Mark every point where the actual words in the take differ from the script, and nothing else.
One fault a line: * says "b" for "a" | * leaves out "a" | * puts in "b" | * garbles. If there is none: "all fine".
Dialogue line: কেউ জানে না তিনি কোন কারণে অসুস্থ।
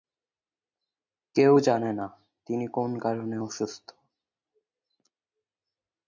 all fine